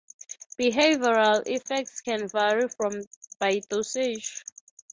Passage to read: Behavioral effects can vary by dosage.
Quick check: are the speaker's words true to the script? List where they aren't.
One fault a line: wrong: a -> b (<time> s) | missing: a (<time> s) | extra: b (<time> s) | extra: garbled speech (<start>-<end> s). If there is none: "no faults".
no faults